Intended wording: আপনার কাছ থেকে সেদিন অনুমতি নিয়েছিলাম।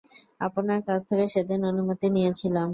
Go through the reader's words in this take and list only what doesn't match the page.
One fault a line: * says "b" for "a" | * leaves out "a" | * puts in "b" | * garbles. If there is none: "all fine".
all fine